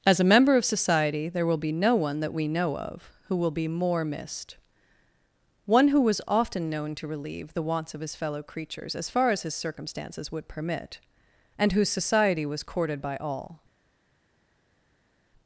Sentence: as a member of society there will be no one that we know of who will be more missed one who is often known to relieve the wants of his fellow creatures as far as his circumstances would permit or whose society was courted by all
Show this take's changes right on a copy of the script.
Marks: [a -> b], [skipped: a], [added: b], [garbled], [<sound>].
as a member of society there will be no one that we know of who will be more missed one who [is -> was] often known to relieve the wants of his fellow creatures as far as his circumstances would permit [or -> and] whose society was courted by all